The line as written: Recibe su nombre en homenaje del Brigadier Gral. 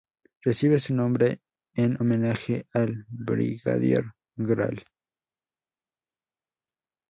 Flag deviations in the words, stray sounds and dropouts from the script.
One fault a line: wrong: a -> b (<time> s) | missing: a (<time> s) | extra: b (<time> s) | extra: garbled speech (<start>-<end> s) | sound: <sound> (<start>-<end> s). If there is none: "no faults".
wrong: del -> al (2.7 s)